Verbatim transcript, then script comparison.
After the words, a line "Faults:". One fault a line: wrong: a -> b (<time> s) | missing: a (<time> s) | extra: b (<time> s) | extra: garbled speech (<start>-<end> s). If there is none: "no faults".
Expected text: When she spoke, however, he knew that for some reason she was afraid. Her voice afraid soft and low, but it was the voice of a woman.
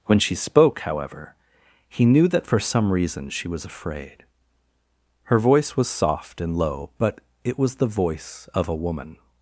When she spoke, however, he knew that for some reason she was afraid. Her voice was soft and low, but it was the voice of a woman.
Faults:
wrong: afraid -> was (5.8 s)